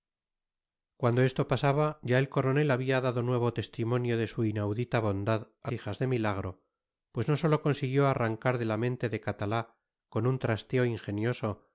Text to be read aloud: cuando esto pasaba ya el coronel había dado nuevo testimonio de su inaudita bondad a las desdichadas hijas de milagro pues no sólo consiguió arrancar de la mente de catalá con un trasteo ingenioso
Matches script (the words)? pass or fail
fail